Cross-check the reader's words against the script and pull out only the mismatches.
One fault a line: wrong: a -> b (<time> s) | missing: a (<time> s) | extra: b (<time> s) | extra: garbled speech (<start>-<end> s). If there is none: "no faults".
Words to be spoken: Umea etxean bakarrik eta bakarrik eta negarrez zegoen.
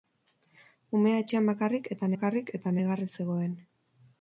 no faults